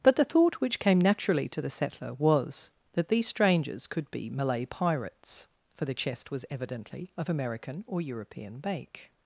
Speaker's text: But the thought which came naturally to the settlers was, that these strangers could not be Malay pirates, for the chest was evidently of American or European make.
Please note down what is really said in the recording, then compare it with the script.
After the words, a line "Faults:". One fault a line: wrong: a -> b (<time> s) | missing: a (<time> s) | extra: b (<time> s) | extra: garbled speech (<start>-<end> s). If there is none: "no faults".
But the thought which came naturally to the settler was, that these strangers could be Malay pirates, for the chest was evidently of American or European make.
Faults:
wrong: settlers -> settler (1.7 s)
missing: not (4.1 s)